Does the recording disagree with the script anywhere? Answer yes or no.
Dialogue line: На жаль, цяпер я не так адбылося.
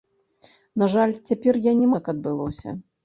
no